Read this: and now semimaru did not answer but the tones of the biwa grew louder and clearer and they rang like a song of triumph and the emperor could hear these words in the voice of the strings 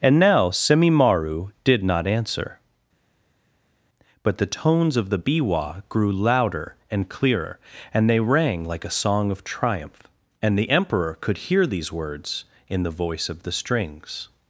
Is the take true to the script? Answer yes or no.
yes